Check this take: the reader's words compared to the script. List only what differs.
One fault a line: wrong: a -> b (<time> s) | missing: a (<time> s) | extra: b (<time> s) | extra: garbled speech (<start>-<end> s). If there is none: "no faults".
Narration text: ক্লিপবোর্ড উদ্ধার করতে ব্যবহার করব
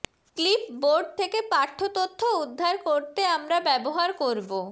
extra: থেকে পাঠ্য তথ্য (1.2 s)
extra: আমরা (3.4 s)